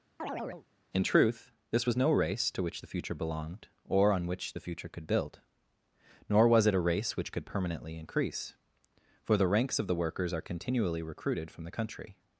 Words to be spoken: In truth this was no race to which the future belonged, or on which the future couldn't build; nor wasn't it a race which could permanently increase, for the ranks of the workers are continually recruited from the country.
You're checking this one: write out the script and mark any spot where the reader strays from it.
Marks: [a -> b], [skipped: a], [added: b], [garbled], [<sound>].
[chirp] In truth this was no race to which the future belonged, or on which the future [couldn't -> could] build; nor [wasn't -> was] it a race which could permanently increase, for the ranks of the workers are continually recruited from the country.